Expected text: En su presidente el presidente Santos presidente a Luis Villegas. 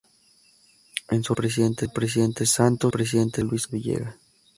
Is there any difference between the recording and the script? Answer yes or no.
no